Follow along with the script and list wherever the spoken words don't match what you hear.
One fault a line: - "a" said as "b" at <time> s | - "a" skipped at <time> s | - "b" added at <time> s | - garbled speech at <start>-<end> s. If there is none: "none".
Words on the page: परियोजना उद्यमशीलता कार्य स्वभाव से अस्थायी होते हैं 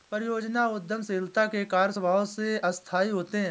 - "के" added at 1.5 s